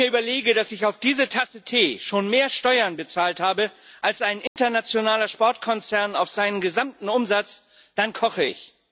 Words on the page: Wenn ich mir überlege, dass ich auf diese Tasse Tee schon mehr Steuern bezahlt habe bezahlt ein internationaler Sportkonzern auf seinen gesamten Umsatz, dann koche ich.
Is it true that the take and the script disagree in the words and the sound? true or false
true